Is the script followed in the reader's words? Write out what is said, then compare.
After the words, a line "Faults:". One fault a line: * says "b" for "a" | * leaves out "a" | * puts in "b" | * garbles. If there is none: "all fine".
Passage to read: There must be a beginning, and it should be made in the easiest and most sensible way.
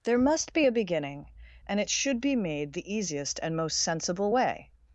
There must be a beginning, and it should be made the easiest and most sensible way.
Faults:
* leaves out "in"